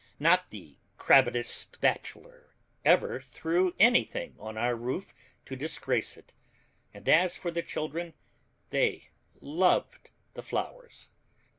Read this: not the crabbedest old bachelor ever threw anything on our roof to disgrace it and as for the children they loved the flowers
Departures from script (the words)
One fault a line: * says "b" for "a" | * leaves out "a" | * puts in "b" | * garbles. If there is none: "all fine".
* leaves out "old"